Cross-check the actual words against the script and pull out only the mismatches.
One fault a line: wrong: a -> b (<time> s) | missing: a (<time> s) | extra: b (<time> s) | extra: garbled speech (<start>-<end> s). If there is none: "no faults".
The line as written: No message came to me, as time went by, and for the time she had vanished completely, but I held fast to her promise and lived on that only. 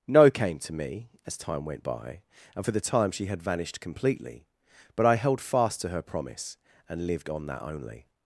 missing: message (0.3 s)